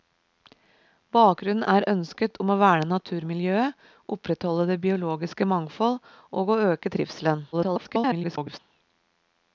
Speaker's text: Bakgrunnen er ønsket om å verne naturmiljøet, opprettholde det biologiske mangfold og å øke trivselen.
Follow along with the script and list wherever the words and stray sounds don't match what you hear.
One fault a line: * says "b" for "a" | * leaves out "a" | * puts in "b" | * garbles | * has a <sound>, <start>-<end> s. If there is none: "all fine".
* garbles